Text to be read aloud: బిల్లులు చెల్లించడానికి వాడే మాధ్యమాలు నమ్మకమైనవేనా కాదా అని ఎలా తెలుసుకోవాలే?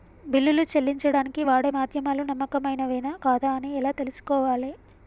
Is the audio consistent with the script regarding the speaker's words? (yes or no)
yes